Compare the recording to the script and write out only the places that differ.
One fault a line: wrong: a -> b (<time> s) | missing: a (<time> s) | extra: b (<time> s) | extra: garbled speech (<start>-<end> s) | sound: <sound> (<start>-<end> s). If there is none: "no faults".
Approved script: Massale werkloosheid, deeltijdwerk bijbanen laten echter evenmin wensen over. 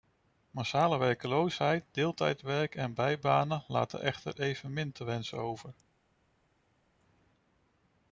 extra: en (2.8 s)
extra: te (4.9 s)